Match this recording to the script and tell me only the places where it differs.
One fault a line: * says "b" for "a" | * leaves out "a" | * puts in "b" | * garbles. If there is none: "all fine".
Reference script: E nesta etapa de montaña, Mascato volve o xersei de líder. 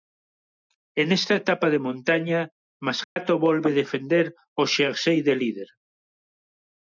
* puts in "defender"